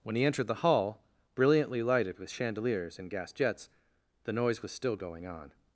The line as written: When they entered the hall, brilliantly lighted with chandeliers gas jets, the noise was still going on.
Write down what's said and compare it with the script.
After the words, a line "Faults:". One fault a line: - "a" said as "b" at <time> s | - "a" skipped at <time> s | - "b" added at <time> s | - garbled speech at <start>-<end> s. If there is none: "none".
When he entered the hall, brilliantly lighted with chandeliers and gas jets, the noise was still going on.
Faults:
- "they" said as "he" at 0.1 s
- "and" added at 3.0 s